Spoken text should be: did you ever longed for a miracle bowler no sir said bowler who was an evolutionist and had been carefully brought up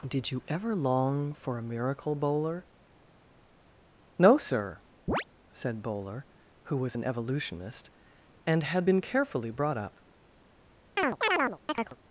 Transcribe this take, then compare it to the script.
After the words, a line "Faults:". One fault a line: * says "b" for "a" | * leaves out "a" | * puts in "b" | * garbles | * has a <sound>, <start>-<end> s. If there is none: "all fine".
did you ever long for a miracle bowler no sir said bowler who was an evolutionist and had been carefully brought up
Faults:
* says "long" for "longed"
* has a chirp, 5.1-5.2 s
* has a chirp, 11.0-12.0 s